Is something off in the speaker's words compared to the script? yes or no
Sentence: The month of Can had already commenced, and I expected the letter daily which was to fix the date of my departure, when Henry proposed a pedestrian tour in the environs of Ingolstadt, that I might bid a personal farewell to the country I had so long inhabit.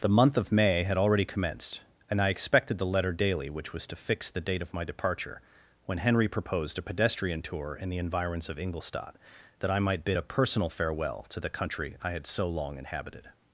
yes